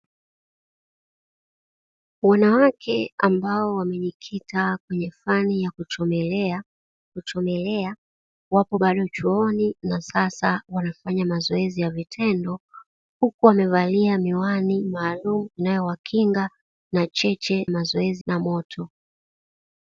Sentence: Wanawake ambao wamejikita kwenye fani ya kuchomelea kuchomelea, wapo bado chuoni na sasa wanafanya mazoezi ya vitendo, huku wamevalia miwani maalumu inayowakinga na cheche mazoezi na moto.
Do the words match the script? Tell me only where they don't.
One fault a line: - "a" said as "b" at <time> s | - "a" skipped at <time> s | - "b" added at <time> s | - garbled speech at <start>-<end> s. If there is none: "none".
none